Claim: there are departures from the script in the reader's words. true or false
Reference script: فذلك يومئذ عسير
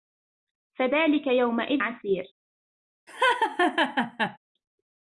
false